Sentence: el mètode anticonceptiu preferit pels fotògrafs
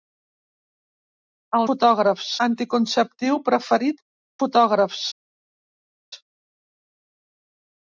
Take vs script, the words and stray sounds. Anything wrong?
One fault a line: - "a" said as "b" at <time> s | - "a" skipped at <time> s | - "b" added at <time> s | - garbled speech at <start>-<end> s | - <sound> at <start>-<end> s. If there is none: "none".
- "mètode" said as "fotògrafs" at 1.7 s
- "pels" skipped at 4.0 s